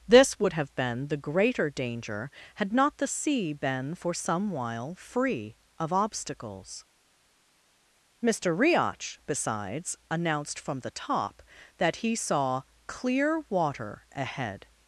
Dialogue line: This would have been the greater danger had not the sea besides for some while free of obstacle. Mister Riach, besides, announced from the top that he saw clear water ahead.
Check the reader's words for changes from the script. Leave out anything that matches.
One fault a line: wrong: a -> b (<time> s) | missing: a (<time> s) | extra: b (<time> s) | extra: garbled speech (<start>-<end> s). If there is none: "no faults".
wrong: besides -> been (3.5 s)
wrong: obstacle -> obstacles (5.9 s)